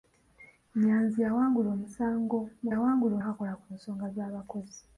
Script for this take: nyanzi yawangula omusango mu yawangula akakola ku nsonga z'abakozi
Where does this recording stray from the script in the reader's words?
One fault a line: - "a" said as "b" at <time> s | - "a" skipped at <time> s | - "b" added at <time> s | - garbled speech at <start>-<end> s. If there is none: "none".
none